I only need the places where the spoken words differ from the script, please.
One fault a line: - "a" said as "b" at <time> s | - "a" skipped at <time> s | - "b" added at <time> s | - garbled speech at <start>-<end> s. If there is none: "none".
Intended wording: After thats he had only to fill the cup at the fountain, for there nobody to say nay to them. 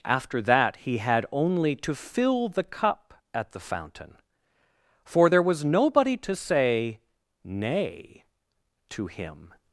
- "thats" said as "that" at 0.4 s
- "was" added at 5.4 s
- "them" said as "him" at 9.1 s